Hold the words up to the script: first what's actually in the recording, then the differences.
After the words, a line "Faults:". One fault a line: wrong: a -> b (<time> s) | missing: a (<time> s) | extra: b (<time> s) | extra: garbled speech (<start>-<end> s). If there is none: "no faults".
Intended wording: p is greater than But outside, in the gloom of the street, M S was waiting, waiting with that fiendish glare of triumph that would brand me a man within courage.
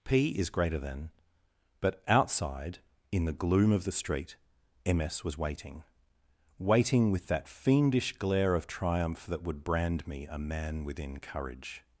p is greater than But outside, in the gloom of the street, M S was waiting, waiting with that fiendish glare of triumph that would brand me a man within courage.
Faults:
no faults